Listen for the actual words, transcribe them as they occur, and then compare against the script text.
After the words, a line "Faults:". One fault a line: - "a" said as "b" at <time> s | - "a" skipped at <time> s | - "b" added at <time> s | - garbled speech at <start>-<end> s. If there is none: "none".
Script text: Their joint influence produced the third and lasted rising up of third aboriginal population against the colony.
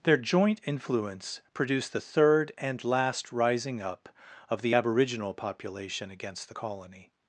Their joint influence produced the third and last rising up of the aboriginal population against the colony.
Faults:
- "lasted" said as "last" at 2.8 s
- "third" said as "the" at 4.6 s